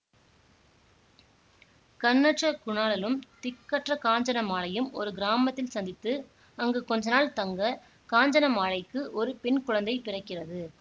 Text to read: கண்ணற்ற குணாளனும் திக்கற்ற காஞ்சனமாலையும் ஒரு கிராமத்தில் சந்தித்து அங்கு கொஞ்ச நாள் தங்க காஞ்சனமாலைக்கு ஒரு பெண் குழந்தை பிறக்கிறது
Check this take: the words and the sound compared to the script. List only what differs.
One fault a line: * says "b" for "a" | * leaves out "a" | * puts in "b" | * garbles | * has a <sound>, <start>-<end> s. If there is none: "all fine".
all fine